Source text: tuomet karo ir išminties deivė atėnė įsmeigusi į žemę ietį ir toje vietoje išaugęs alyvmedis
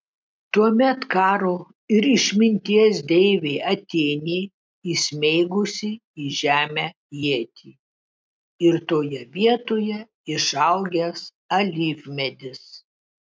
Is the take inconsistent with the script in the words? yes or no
no